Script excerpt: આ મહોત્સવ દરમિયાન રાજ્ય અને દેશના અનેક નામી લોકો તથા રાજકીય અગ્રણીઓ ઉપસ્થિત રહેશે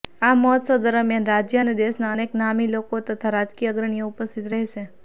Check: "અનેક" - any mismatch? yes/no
no